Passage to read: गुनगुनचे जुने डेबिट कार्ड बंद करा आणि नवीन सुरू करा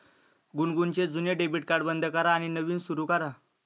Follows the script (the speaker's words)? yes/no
yes